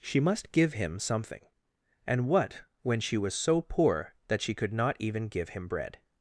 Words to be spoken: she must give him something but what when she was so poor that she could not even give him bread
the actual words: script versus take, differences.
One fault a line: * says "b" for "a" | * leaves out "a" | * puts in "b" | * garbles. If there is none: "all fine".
* says "and" for "but"